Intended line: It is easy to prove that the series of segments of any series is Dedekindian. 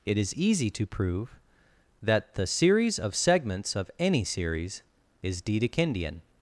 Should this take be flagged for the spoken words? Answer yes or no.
no